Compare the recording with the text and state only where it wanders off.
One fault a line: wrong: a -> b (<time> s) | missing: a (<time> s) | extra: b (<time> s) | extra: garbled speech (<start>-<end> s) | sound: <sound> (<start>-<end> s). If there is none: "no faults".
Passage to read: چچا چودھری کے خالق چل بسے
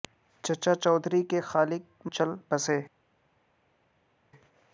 no faults